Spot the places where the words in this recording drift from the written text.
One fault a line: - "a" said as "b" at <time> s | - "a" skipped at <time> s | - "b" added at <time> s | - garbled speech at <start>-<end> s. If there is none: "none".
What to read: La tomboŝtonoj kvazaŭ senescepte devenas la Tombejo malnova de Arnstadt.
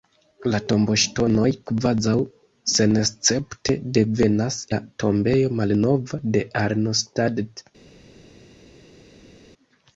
none